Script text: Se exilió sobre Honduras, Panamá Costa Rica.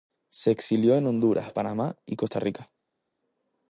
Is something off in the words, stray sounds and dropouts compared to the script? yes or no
yes